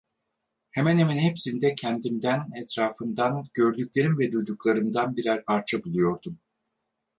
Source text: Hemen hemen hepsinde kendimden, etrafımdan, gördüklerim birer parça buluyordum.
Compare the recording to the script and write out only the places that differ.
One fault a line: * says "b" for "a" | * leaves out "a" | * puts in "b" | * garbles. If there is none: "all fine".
* puts in "ve duyduklarımdan"